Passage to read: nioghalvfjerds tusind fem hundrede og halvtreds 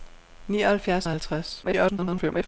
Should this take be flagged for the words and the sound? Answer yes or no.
yes